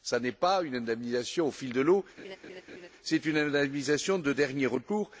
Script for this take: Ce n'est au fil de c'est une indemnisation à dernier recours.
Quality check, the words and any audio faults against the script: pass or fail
fail